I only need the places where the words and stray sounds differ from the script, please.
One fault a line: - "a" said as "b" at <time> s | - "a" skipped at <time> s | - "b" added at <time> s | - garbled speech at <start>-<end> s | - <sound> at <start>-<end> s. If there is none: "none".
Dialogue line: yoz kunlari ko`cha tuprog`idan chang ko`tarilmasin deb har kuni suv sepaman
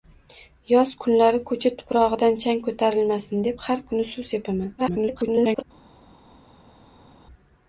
- garbled speech at 4.8-5.6 s